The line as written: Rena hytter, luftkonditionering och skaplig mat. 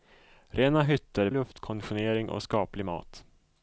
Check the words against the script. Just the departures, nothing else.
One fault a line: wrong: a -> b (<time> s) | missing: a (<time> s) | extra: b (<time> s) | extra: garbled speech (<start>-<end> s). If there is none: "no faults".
no faults